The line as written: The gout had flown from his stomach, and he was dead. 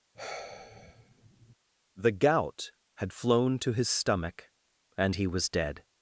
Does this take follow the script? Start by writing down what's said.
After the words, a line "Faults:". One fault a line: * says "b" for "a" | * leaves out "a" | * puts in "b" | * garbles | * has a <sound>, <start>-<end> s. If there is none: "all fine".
The gout had flown to his stomach, and he was dead.
Faults:
* has a sigh, 0.1-1.6 s
* says "to" for "from"